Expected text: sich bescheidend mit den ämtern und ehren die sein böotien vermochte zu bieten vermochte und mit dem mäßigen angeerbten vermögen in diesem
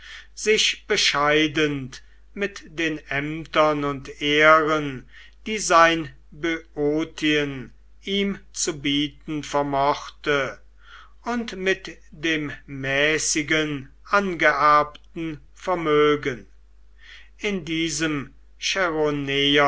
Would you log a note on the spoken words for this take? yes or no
yes